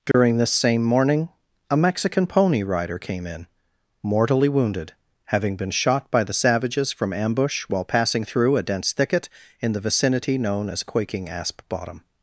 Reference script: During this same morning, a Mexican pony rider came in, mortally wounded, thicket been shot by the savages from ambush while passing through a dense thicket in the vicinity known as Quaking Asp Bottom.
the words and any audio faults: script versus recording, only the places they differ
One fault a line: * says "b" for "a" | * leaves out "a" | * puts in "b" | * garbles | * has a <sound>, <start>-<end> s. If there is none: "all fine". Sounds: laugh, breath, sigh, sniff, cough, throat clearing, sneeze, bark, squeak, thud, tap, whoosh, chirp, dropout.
* has a dropout, 0.1-0.1 s
* says "having" for "thicket"